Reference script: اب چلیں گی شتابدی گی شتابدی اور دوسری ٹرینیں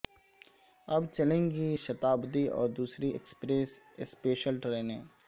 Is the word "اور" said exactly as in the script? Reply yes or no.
no